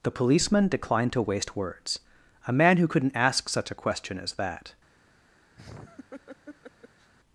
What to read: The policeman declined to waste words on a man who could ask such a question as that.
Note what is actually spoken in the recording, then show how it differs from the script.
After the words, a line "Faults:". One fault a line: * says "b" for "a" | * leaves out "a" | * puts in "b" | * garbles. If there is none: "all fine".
The policeman declined to waste words a man who couldn't ask such a question as that.
Faults:
* leaves out "on"
* says "couldn't" for "could"